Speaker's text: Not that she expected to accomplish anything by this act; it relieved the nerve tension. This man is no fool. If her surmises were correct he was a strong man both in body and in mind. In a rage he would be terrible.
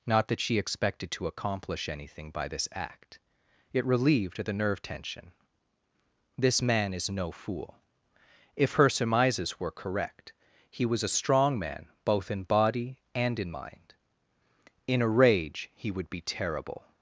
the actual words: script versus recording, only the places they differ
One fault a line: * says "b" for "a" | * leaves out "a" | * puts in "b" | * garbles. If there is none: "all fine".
all fine